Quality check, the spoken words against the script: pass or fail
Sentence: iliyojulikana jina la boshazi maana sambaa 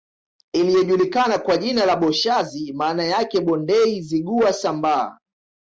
fail